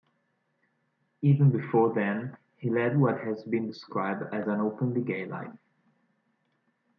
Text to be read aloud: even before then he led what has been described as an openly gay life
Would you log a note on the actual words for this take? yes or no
no